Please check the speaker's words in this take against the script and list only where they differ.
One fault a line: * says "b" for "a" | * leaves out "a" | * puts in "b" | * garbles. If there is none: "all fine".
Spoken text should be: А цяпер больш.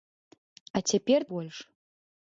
all fine